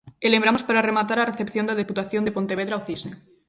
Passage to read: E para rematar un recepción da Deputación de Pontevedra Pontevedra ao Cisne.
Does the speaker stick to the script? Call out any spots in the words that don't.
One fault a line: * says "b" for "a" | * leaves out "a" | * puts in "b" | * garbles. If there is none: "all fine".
* puts in "lembramos"
* says "a" for "un"
* leaves out "Pontevedra"